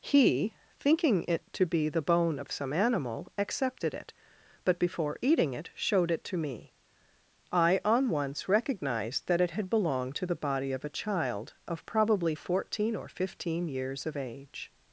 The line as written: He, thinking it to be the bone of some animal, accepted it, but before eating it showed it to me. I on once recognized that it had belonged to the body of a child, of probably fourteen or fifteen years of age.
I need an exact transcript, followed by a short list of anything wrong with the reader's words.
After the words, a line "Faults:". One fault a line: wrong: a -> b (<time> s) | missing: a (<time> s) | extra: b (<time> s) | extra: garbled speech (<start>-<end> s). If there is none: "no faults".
He, thinking it to be the bone of some animal, accepted it, but before eating it showed it to me. I on once recognized that it had belonged to the body of a child, of probably fourteen or fifteen years of age.
Faults:
no faults